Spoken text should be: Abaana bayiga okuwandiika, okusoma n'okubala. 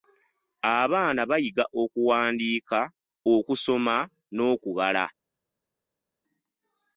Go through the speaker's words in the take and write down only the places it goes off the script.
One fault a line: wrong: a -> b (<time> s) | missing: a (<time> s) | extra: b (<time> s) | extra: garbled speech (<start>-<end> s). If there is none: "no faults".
no faults